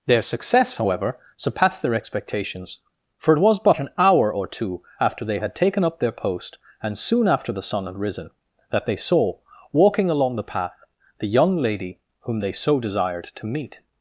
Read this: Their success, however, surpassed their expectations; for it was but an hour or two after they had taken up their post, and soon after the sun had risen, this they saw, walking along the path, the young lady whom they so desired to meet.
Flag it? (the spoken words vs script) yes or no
yes